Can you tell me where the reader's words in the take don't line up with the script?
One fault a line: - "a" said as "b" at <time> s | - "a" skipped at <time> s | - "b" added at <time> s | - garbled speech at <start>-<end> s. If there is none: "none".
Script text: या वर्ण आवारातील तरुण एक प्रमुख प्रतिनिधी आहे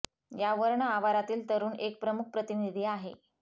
none